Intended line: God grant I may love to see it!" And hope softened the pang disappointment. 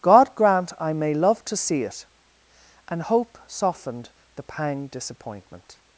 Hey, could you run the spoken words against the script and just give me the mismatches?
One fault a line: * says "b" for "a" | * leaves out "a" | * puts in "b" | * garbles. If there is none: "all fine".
all fine